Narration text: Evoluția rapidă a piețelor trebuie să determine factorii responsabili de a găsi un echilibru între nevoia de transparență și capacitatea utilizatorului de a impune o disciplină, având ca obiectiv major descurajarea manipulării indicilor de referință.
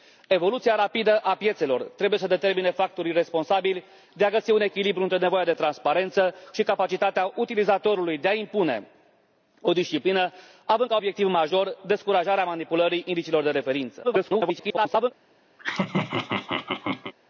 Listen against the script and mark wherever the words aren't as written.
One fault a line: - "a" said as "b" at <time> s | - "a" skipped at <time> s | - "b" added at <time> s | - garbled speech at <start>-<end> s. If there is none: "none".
- garbled speech at 14.0-15.1 s